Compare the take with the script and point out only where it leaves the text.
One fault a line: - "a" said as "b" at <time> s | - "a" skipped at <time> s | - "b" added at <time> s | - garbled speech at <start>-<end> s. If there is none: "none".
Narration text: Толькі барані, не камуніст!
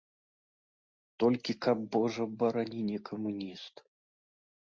- "каб божа" added at 1.6 s